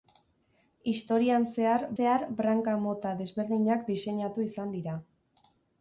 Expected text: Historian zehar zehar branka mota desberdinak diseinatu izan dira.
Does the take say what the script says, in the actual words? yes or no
yes